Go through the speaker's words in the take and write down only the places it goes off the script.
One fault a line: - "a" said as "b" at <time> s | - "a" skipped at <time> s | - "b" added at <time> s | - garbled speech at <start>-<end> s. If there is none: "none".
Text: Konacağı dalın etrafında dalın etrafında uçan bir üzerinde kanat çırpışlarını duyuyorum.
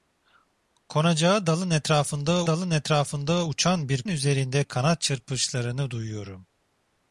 none